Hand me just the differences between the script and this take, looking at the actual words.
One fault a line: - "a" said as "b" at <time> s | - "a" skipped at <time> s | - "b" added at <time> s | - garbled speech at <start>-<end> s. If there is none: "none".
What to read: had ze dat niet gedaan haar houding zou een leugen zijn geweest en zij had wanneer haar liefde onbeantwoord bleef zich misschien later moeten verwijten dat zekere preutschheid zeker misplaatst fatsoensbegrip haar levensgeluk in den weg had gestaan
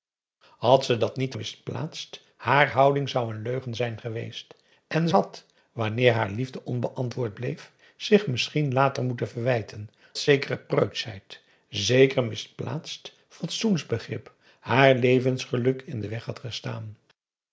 - "gedaan" said as "misplaatst" at 1.3 s
- "zij" skipped at 5.1 s
- "dat" skipped at 9.9 s